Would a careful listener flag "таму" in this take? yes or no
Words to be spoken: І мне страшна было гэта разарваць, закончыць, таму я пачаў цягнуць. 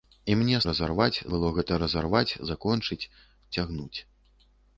yes